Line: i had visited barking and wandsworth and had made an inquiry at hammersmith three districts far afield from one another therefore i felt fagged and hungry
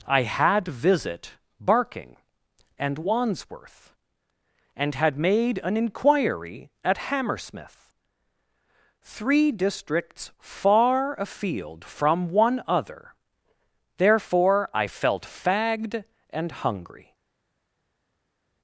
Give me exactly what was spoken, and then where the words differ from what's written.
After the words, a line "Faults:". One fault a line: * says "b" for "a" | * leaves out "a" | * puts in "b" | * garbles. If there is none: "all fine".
i had visit barking and wandsworth and had made an inquiry at hammersmith three districts far afield from one other therefore i felt fagged and hungry
Faults:
* says "visit" for "visited"
* says "other" for "another"